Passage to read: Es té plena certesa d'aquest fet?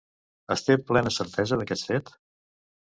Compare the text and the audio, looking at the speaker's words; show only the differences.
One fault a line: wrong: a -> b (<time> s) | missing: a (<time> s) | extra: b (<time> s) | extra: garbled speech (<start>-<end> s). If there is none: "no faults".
no faults